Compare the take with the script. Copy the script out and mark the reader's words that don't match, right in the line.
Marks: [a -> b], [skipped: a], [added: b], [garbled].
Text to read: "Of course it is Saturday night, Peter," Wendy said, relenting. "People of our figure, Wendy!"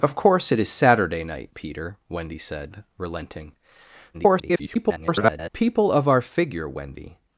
"Of course it is Saturday night, Peter," Wendy said, relenting. [garbled] "People of our figure, Wendy!"